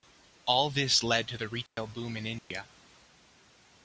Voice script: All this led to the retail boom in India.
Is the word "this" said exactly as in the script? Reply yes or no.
yes